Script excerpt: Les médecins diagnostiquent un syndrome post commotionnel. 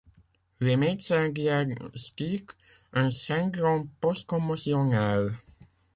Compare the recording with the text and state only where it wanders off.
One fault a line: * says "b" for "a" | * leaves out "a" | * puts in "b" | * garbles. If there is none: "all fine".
all fine